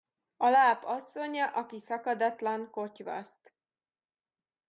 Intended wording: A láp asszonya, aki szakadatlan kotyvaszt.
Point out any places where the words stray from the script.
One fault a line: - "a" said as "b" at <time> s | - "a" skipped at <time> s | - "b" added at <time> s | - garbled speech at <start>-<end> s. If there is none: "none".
none